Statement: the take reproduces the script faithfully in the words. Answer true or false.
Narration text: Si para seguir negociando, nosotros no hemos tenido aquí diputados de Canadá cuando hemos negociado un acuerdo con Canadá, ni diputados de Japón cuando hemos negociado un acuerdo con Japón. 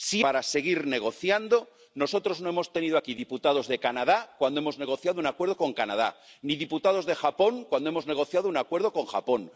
true